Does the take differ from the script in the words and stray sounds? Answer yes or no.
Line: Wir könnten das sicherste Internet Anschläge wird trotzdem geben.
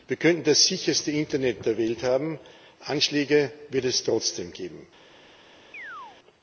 yes